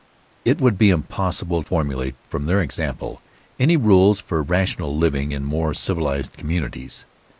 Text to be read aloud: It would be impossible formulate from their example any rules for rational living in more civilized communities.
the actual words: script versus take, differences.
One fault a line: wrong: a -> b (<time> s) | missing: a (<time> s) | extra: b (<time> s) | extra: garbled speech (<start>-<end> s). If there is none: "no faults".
no faults